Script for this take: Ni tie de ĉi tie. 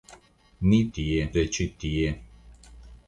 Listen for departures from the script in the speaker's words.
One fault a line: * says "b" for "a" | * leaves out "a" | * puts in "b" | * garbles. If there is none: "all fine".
all fine